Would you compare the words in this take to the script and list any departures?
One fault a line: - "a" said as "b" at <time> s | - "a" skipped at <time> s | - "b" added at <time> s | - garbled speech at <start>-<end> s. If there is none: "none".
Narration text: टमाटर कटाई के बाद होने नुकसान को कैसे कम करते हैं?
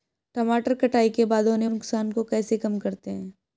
none